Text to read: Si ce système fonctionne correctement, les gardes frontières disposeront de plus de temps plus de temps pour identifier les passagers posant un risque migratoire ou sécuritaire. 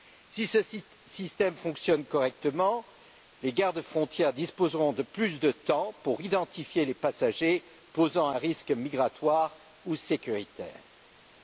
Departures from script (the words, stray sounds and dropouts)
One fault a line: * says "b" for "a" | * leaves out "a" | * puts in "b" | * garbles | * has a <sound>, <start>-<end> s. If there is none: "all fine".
* leaves out "plus de temps"